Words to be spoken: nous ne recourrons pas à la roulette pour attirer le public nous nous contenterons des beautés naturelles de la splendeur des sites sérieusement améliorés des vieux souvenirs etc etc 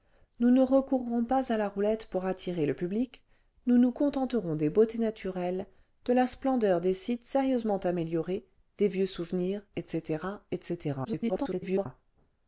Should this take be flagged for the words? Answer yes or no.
yes